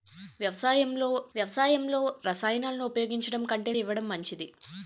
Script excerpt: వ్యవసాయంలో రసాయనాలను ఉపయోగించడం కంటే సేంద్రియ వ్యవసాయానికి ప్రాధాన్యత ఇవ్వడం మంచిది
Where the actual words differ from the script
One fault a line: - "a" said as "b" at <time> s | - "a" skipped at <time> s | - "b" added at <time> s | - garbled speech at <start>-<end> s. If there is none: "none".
- "వ్యవసాయంలో" added at 1.3 s
- "సేంద్రియ వ్యవసాయానికి ప్రాధాన్యత" skipped at 3.7 s